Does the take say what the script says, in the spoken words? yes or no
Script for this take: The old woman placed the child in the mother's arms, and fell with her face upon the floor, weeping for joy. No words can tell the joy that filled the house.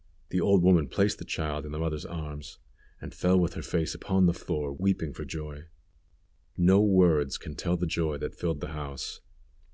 yes